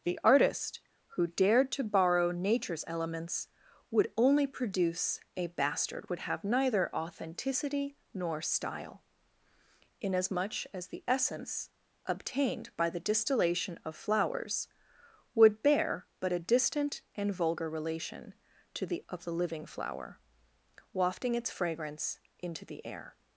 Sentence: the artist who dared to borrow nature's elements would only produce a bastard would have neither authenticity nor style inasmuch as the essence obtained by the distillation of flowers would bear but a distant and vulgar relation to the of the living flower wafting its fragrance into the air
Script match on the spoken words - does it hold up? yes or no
yes